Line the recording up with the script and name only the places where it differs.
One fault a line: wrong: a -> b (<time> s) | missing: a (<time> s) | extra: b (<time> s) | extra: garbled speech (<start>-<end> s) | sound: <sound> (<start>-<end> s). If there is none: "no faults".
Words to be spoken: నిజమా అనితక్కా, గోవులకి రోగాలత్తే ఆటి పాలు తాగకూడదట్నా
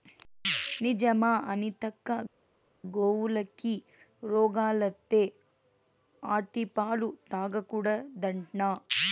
no faults